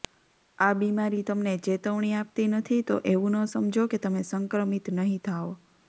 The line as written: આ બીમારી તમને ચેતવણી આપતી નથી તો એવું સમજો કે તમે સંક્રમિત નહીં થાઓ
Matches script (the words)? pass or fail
fail